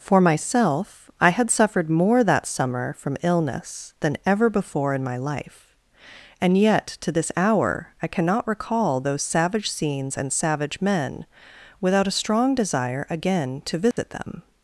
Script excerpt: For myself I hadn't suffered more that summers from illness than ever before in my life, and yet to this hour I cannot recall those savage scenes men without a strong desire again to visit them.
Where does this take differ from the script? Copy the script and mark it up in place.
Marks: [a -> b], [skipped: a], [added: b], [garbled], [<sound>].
For myself I [hadn't -> had] suffered more that [summers -> summer] from illness than ever before in my life, and yet to this hour I cannot recall those savage scenes [added: and savage] men without a strong desire again to visit [dropout] them.